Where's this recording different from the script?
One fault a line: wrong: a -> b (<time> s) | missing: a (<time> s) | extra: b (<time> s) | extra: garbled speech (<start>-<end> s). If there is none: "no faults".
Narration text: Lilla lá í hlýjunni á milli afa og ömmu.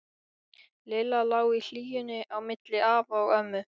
no faults